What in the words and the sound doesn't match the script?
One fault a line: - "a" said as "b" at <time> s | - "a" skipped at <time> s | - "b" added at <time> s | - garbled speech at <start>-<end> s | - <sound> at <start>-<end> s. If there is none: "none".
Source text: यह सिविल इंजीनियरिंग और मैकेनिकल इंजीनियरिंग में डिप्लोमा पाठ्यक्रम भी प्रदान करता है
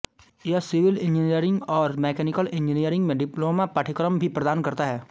none